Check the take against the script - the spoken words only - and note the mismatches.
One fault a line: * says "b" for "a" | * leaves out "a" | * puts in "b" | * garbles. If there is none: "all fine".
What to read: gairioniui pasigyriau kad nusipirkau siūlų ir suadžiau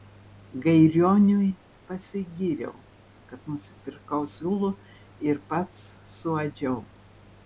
* puts in "pats"